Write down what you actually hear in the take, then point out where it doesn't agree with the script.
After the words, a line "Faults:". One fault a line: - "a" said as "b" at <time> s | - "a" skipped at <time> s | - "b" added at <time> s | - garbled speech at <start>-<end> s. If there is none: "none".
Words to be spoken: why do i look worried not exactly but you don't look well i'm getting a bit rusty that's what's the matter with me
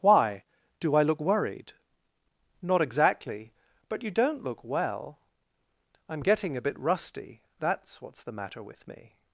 why do i look worried not exactly but you don't look well i'm getting a bit rusty that's what's the matter with me
Faults:
none